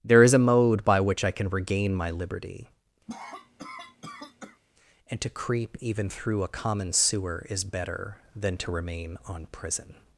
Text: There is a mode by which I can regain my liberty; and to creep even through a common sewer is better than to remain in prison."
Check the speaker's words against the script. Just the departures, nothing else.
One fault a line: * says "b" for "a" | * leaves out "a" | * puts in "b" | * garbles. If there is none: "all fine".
* says "on" for "in"